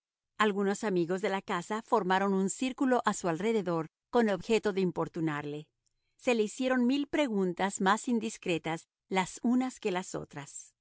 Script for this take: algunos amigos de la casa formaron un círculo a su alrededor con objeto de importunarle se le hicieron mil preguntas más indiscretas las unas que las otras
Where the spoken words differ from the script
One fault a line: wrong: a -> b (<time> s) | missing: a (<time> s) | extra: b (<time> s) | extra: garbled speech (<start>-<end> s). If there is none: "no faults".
no faults